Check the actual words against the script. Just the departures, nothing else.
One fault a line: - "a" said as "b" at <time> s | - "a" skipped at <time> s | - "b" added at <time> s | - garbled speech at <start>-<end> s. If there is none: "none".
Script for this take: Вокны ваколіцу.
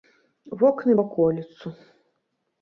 none